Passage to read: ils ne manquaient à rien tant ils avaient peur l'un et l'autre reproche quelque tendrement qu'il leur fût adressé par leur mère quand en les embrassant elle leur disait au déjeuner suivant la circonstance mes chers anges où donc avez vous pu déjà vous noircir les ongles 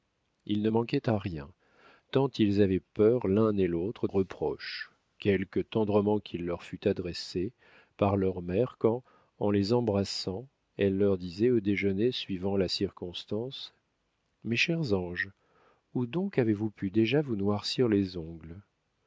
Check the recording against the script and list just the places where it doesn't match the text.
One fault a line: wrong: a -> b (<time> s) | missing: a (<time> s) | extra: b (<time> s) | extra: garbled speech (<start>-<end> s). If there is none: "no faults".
no faults